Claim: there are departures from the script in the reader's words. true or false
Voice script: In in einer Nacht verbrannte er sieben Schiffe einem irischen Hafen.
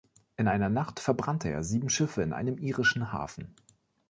true